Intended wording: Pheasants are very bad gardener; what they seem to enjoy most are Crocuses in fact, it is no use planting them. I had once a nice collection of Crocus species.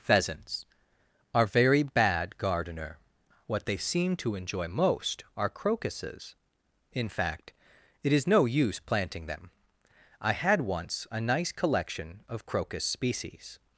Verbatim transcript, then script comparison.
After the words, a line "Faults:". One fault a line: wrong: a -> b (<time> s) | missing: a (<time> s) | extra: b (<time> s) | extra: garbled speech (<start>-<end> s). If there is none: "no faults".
Pheasants are very bad gardener; what they seem to enjoy most are Crocuses in fact, it is no use planting them. I had once a nice collection of Crocus species.
Faults:
no faults